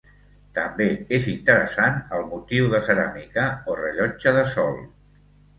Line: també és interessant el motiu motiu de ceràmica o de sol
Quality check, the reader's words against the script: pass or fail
fail